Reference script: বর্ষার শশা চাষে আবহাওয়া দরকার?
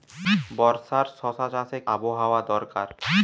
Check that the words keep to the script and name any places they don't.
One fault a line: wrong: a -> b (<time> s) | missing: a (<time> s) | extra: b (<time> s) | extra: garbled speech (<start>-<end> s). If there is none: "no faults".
no faults